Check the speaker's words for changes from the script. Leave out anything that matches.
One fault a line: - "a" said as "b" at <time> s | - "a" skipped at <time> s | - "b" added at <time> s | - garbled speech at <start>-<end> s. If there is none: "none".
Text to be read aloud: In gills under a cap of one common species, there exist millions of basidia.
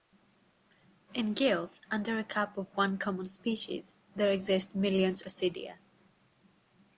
- "of" skipped at 5.2 s